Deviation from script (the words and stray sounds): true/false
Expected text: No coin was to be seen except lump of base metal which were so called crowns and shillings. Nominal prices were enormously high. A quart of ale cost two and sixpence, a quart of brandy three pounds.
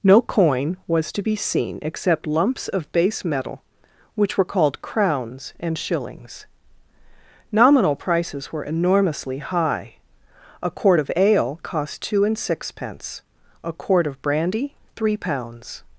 true